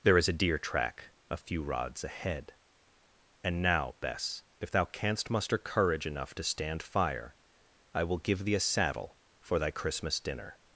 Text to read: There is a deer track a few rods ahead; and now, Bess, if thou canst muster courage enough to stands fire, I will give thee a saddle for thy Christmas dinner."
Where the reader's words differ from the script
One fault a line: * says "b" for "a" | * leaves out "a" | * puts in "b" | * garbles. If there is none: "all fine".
* says "stand" for "stands"